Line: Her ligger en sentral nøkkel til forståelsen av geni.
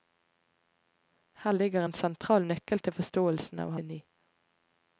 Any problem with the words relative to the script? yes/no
no